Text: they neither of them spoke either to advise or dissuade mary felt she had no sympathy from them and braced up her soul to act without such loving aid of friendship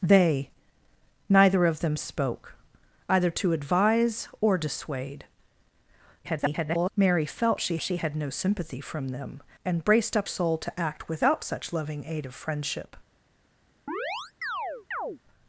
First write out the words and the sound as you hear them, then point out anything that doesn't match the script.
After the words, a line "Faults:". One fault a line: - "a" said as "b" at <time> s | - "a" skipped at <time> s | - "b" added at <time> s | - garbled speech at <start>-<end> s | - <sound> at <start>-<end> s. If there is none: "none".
they neither of them spoke either to advise or dissuade [garbled] mary felt she she had no sympathy from them and braced up soul to act without such loving aid of friendship
Faults:
- garbled speech at 6.2-6.9 s
- "she" added at 7.8 s
- "her" skipped at 10.3 s
- chirp at 13.9-15.2 s